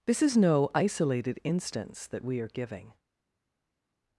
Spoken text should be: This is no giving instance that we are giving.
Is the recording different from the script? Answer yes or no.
yes